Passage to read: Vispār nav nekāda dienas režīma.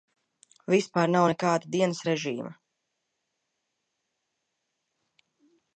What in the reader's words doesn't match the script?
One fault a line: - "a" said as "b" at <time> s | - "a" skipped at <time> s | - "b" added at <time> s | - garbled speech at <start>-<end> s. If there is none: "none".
none